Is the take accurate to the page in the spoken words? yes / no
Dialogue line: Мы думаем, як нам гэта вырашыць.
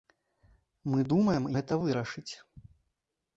no